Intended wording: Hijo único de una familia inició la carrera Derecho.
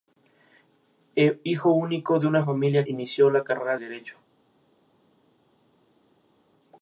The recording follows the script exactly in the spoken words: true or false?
true